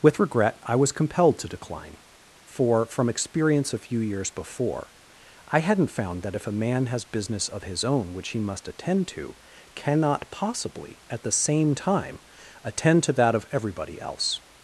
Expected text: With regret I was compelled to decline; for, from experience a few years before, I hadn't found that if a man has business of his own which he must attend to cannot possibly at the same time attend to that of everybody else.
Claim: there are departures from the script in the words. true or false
false